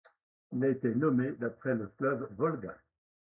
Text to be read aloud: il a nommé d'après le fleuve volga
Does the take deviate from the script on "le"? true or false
false